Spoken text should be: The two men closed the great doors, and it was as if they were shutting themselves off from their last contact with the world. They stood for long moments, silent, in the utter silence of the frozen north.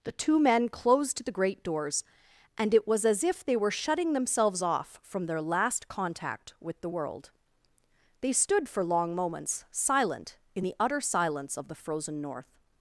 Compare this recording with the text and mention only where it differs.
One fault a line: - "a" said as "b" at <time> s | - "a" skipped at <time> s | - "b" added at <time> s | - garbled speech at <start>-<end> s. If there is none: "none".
none